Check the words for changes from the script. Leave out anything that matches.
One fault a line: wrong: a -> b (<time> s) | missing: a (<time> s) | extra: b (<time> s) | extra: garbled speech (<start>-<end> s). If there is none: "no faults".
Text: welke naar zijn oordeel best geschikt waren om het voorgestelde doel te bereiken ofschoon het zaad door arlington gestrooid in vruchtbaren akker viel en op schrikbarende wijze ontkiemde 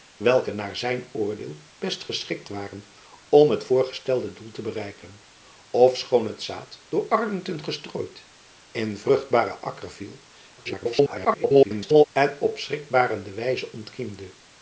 extra: garbled speech (10.6-12.0 s)